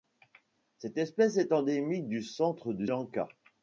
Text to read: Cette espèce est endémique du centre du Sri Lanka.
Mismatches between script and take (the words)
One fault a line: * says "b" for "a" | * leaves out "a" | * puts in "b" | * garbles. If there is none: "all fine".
* leaves out "Sri"